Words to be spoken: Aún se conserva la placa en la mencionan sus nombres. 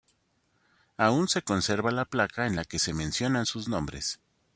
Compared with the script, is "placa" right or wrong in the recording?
right